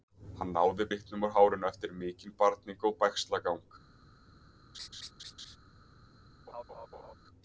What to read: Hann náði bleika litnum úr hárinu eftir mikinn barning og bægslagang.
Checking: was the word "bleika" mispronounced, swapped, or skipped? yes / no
yes